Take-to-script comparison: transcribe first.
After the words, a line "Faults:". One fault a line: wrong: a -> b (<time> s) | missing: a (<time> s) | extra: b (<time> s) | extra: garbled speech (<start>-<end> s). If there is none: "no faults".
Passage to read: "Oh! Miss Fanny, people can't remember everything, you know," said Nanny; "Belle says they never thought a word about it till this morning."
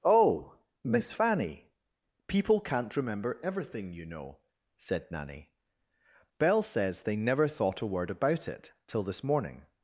"Oh! Miss Fanny, people can't remember everything, you know," said Nanny; "Belle says they never thought a word about it till this morning."
Faults:
no faults